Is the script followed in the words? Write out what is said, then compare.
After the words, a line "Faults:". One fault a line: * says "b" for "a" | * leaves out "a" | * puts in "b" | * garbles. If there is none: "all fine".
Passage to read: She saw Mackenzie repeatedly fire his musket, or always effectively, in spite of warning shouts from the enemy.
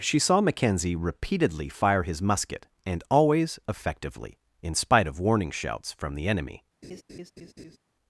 She saw Mackenzie repeatedly fire his musket, and always effectively, in spite of warning shouts from the enemy.
Faults:
* says "and" for "or"